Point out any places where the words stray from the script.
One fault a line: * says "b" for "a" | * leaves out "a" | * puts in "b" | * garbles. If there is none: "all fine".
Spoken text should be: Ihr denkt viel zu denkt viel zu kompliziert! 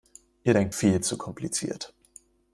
* leaves out "denkt viel zu"